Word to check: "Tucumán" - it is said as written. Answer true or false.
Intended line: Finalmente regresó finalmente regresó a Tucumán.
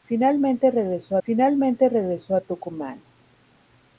true